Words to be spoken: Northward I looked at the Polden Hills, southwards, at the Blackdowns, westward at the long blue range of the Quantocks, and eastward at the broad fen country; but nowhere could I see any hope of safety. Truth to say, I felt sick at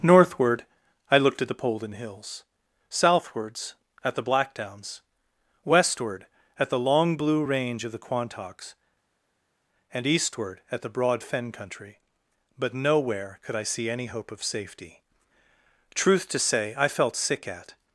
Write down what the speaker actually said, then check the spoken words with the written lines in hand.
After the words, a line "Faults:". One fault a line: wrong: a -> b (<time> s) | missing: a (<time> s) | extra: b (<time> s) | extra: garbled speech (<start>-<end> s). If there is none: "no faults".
Northward I looked at the Polden Hills, southwards, at the Blackdowns, westward at the long blue range of the Quantocks, and eastward at the broad fen country; but nowhere could I see any hope of safety. Truth to say, I felt sick at
Faults:
no faults